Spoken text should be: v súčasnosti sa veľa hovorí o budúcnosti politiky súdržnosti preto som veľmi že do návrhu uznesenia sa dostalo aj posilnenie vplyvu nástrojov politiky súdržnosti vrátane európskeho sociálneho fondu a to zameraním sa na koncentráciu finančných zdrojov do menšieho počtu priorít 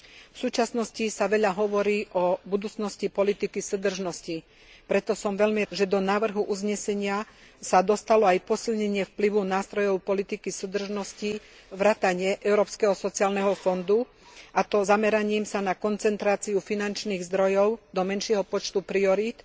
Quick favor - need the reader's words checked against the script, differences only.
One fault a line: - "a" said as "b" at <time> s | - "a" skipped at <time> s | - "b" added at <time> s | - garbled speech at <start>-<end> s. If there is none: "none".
none